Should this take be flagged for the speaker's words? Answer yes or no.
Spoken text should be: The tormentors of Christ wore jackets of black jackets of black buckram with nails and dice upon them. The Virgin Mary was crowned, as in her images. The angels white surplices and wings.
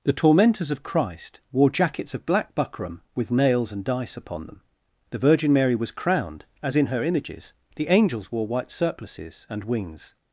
yes